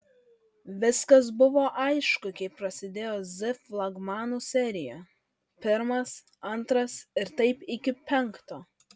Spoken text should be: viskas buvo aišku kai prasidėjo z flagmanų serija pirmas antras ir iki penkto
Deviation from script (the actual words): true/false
true